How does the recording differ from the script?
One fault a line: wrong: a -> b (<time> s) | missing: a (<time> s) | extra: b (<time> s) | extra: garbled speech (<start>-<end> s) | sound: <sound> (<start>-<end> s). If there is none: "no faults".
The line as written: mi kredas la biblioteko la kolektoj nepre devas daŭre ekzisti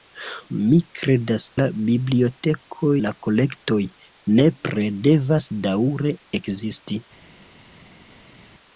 no faults